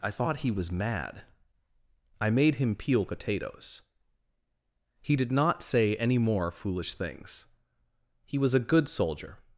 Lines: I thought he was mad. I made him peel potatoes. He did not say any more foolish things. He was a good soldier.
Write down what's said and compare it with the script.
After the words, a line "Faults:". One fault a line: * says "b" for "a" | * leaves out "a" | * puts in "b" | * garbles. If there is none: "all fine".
I thought he was mad. I made him peel potatoes. He did not say any more foolish things. He was a good soldier.
Faults:
all fine